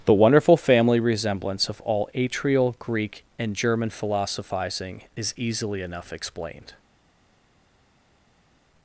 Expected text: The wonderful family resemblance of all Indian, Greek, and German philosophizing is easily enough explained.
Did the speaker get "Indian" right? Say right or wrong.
wrong